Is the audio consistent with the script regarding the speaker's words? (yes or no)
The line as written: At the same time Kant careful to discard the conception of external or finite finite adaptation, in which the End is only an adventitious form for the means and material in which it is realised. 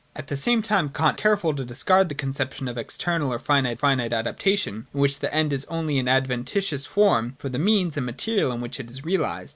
yes